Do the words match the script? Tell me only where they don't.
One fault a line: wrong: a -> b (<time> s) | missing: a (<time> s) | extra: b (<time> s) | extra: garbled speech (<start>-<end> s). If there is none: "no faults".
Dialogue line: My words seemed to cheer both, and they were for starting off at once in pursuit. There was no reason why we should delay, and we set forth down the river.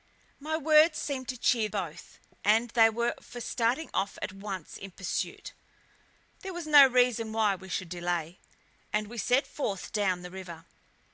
no faults